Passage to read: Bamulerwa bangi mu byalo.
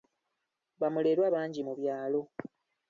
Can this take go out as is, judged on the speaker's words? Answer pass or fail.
pass